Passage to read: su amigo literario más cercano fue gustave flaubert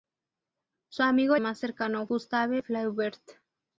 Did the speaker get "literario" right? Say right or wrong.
wrong